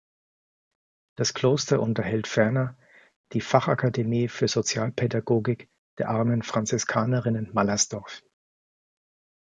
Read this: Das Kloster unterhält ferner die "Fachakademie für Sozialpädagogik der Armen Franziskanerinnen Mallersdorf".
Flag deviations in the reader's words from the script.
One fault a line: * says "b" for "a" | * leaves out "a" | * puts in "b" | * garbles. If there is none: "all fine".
all fine